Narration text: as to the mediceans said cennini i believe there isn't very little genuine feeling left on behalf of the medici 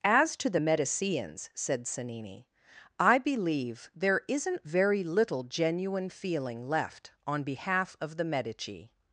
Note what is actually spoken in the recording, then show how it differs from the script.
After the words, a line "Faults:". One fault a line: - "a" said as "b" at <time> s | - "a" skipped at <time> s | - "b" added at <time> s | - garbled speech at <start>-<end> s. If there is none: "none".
as to the mediceans said cennini i believe there isn't very little genuine feeling left on behalf of the medici
Faults:
none